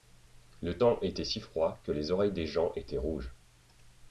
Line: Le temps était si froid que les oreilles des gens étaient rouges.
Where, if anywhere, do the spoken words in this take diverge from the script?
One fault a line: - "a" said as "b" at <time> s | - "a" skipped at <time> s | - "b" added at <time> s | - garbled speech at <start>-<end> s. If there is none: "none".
none